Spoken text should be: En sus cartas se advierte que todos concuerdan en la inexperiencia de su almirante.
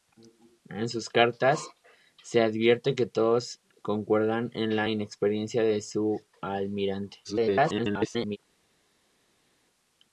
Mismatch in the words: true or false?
true